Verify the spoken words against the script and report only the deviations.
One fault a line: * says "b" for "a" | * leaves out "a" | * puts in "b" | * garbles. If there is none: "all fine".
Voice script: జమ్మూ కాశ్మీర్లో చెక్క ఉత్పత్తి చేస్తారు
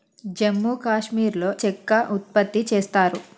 all fine